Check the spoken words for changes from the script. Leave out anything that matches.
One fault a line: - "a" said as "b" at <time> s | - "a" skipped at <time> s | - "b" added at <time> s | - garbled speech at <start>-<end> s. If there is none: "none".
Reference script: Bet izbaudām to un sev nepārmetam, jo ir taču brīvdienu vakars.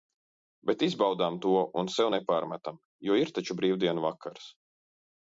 none